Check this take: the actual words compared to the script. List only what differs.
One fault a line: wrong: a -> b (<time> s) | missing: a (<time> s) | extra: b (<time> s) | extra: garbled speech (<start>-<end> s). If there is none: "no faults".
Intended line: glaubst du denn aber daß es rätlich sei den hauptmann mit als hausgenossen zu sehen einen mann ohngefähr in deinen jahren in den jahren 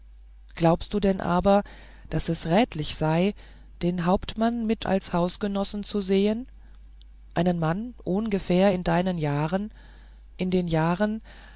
no faults